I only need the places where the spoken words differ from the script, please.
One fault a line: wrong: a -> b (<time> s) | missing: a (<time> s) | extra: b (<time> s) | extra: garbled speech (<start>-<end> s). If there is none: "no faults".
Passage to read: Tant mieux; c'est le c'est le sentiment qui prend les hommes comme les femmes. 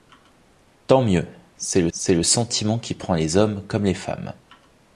no faults